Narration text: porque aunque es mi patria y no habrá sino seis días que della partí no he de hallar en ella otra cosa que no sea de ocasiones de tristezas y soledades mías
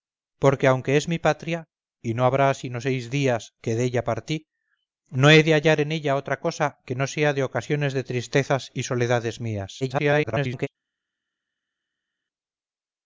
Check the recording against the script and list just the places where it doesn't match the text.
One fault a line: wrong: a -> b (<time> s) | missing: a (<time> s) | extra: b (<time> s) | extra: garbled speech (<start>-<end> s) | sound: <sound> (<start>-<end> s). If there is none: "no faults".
extra: garbled speech (9.8-10.7 s)